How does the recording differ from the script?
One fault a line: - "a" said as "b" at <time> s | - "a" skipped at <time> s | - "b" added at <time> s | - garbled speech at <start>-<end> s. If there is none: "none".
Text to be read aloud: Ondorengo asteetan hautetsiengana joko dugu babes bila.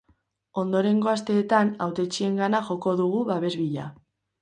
none